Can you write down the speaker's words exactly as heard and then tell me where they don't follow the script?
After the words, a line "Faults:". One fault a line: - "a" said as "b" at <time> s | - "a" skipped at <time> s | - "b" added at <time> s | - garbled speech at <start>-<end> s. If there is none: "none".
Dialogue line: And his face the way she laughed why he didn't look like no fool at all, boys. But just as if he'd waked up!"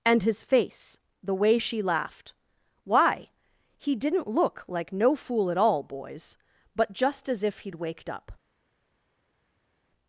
And his face the way she laughed why he didn't look like no fool at all, boys. But just as if he'd waked up!"
Faults:
none